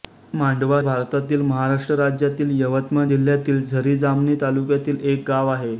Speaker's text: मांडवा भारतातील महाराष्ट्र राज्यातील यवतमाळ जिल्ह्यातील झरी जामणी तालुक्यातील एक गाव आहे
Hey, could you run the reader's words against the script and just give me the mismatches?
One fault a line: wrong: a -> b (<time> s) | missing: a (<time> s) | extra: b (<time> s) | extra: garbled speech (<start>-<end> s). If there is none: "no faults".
no faults